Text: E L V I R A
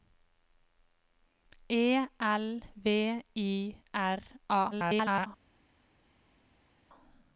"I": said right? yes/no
yes